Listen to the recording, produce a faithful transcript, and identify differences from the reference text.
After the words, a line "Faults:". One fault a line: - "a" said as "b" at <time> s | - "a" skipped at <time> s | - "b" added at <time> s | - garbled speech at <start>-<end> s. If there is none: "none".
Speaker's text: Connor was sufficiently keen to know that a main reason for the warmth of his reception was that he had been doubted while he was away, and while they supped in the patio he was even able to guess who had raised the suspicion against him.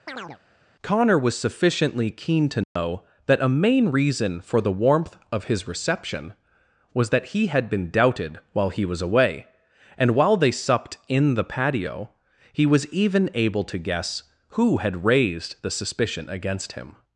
Connor was sufficiently keen to know that a main reason for the warmth of his reception was that he had been doubted while he was away, and while they supped in the patio he was even able to guess who had raised the suspicion against him.
Faults:
none